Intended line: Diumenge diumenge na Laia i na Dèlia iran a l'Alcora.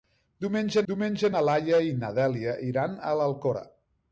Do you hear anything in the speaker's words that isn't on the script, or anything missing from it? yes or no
no